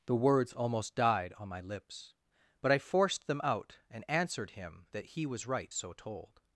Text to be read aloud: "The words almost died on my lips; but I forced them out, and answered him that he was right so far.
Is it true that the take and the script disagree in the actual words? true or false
true